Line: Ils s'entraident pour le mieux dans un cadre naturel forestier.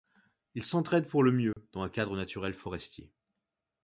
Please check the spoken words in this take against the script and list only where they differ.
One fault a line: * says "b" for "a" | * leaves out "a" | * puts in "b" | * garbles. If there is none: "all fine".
all fine